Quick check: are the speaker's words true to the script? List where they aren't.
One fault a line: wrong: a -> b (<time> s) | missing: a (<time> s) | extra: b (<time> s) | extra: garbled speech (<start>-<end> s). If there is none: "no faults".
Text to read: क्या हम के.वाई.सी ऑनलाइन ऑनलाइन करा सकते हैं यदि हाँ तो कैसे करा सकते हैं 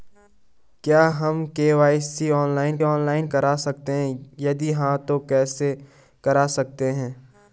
no faults